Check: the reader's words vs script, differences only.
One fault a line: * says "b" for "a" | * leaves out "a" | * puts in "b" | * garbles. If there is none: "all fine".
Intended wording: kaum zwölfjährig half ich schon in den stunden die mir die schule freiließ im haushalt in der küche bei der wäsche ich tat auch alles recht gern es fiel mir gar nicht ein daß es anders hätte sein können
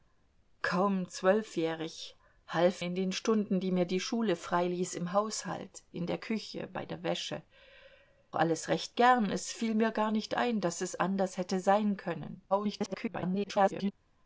* leaves out "ich schon"
* leaves out "ich tat auch"
* garbles